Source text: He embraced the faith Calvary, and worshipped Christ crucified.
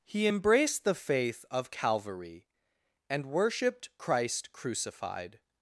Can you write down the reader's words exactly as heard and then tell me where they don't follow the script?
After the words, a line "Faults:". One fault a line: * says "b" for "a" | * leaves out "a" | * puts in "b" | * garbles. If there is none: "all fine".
He embraced the faith of Calvary, and worshipped Christ crucified.
Faults:
* puts in "of"